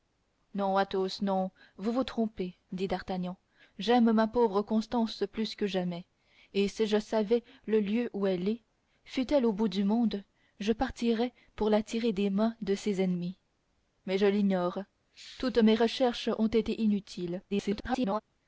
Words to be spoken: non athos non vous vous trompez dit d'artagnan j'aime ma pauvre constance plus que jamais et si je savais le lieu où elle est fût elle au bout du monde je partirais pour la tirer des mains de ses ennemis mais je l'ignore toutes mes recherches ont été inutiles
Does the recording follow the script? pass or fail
fail